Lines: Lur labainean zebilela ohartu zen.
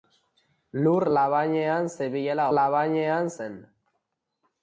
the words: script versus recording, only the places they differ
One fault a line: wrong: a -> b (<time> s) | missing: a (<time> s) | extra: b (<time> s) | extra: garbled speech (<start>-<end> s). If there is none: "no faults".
wrong: ohartu -> labainean (2.6 s)